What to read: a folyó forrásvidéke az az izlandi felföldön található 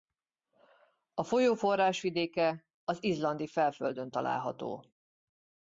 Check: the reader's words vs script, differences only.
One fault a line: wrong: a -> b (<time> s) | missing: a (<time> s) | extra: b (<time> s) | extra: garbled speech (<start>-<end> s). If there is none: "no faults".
missing: az (3.0 s)